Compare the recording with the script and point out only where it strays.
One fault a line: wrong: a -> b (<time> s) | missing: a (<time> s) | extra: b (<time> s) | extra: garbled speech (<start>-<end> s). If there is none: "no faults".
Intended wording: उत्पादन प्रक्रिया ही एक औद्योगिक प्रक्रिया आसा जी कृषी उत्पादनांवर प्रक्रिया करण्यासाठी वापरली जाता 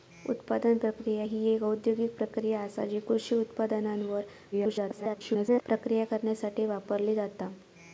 extra: garbled speech (4.5-5.6 s)